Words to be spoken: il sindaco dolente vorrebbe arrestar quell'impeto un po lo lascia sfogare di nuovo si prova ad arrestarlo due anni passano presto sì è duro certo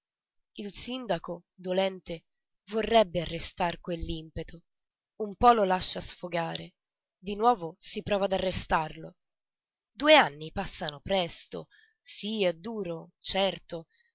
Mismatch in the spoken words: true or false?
false